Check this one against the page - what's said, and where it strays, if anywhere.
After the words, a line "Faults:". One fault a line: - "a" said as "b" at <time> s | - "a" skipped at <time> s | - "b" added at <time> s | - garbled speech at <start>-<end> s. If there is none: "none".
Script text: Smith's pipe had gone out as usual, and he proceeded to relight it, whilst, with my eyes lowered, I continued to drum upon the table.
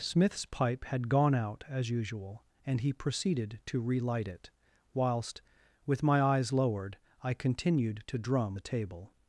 Smith's pipe had gone out as usual, and he proceeded to relight it, whilst, with my eyes lowered, I continued to drum the table.
Faults:
- "upon" skipped at 8.6 s